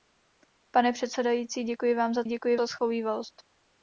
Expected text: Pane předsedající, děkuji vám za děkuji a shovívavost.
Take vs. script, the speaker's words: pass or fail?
pass